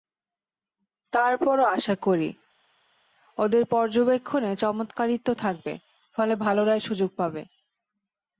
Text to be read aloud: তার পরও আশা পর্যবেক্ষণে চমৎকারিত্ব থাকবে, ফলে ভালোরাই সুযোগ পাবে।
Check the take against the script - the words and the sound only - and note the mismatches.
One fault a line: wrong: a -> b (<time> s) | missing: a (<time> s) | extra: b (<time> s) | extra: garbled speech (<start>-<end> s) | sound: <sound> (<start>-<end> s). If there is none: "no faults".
extra: করি ওদের (2.0 s)